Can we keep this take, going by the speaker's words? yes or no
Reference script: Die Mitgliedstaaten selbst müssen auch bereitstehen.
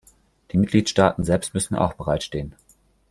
yes